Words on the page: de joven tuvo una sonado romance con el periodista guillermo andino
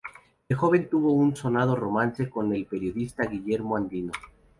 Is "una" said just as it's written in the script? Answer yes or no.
no